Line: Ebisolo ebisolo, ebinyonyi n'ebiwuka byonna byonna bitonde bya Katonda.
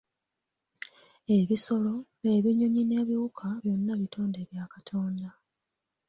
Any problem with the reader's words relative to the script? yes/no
yes